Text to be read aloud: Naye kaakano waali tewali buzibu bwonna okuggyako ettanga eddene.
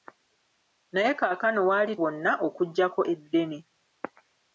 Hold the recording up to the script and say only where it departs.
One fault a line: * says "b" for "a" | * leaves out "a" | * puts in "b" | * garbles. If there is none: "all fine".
* leaves out "tewali buzibu"
* leaves out "ettanga"